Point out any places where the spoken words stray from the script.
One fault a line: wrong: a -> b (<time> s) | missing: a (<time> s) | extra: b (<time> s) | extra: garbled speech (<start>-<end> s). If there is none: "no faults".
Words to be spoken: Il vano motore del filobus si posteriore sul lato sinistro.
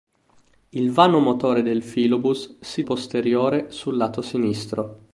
no faults